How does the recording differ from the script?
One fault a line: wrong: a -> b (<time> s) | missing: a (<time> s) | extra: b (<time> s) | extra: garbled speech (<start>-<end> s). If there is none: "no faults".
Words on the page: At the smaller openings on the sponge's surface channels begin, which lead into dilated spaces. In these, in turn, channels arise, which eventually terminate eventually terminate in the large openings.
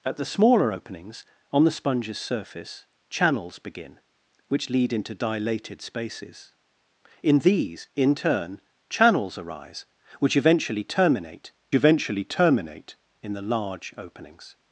no faults